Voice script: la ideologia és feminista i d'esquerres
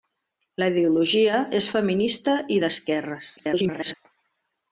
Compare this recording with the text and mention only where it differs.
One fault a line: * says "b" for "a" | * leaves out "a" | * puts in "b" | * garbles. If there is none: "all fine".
* garbles